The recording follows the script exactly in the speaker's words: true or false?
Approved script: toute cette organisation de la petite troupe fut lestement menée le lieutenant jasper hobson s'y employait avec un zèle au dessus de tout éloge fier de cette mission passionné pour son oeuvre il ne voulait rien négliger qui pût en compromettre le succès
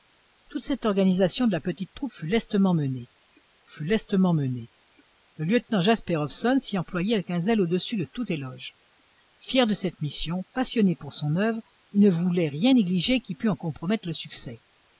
false